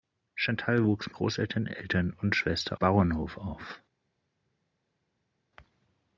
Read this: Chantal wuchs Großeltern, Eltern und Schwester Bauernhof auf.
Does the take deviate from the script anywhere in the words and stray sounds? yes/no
no